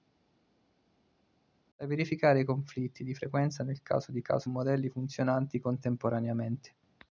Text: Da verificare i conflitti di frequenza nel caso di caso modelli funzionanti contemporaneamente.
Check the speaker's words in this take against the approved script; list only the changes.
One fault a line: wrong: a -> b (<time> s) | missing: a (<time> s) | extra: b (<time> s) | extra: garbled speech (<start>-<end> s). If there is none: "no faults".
no faults